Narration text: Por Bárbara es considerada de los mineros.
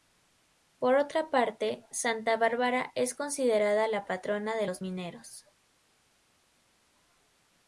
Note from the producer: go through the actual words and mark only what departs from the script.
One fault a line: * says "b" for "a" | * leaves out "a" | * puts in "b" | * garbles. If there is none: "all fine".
* puts in "otra parte Santa"
* puts in "la patrona"